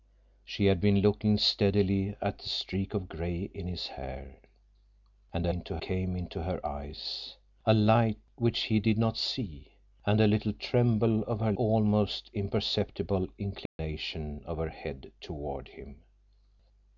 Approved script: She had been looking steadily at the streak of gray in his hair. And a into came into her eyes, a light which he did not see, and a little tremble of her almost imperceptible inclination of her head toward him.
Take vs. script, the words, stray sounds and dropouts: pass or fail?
fail